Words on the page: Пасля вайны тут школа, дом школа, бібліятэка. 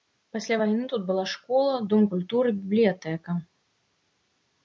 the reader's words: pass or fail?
fail